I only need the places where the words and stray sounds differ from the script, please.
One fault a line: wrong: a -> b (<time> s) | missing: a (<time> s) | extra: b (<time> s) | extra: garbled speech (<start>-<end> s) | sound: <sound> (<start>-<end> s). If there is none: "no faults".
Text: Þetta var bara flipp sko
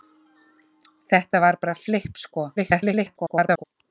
extra: garbled speech (2.6-3.6 s)